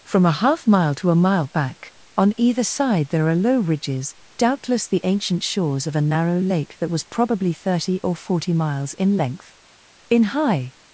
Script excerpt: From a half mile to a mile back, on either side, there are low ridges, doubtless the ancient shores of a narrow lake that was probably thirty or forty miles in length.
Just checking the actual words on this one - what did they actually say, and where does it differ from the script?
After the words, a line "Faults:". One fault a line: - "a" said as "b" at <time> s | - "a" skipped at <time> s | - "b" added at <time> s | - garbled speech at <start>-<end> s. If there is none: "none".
From a half mile to a mile back, on either side, there are low ridges, doubtless the ancient shores of a narrow lake that was probably thirty or forty miles in length. In high
Faults:
- "In high" added at 10.1 s